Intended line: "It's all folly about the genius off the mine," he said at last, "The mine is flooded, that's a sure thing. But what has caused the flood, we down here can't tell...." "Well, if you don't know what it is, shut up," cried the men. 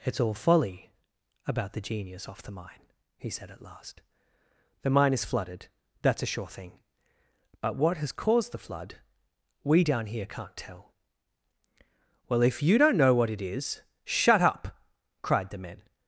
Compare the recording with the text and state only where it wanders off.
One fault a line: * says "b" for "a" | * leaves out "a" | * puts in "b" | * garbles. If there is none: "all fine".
all fine